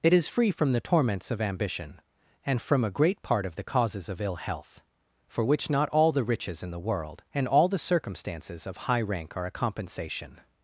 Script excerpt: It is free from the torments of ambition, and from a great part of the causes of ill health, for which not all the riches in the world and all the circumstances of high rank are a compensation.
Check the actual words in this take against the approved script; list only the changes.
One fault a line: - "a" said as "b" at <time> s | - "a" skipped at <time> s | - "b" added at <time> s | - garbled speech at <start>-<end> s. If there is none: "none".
none